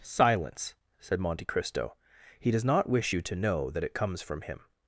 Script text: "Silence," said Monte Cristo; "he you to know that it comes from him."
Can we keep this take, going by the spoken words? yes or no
no